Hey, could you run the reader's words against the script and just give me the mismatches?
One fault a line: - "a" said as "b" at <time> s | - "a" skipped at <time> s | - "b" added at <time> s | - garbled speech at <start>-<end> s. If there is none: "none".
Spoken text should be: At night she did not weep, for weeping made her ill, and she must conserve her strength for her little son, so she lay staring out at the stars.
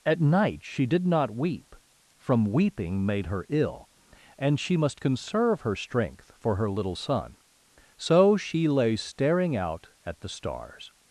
- "for" said as "from" at 2.2 s